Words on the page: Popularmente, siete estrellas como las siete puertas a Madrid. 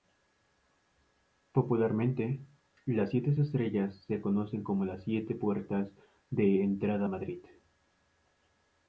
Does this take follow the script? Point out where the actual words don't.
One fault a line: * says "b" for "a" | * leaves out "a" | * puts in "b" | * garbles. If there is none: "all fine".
* puts in "las"
* puts in "se conocen"
* puts in "de entrada"